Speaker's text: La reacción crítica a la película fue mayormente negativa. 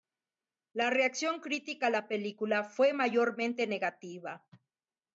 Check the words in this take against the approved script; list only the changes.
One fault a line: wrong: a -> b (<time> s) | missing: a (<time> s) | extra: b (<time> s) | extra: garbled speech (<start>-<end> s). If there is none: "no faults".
no faults